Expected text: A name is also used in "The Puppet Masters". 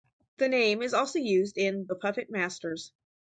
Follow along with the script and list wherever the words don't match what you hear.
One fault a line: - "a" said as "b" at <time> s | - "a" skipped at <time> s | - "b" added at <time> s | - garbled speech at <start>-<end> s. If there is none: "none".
- "A" said as "The" at 0.4 s